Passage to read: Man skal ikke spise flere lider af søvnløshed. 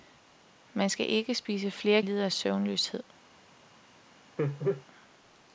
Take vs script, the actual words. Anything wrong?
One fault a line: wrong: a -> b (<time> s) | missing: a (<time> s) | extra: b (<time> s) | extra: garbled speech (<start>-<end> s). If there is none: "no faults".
no faults